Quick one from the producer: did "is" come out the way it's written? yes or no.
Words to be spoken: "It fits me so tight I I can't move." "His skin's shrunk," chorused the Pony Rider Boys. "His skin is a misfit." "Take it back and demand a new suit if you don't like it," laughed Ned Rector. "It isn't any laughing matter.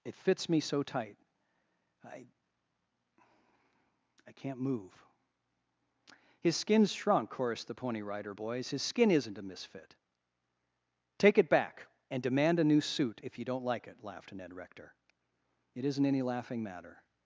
no